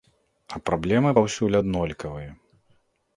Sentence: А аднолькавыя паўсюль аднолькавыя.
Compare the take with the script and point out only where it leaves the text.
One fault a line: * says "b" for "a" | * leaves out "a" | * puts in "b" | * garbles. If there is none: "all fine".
* says "праблемы" for "аднолькавыя"